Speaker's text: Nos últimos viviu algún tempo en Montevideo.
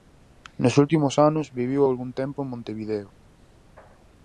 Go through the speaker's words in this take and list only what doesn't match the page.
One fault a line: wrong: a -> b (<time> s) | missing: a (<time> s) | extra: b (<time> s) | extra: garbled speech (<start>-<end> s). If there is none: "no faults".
extra: anos (1.3 s)